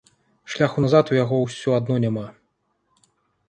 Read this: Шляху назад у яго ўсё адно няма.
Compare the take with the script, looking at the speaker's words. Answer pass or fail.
pass